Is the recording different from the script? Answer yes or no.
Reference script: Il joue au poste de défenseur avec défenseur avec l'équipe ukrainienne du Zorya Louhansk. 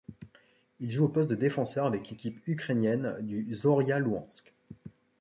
yes